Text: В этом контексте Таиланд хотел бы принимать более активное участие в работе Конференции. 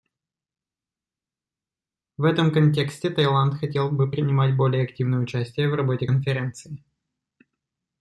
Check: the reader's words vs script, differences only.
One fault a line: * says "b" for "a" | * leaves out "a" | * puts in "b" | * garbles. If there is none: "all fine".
all fine